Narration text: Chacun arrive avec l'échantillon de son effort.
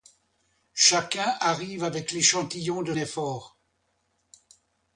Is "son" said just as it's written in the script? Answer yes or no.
no